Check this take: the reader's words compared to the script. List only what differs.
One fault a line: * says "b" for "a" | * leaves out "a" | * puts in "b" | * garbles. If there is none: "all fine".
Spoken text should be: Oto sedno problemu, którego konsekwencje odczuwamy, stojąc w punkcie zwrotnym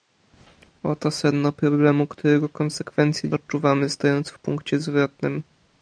all fine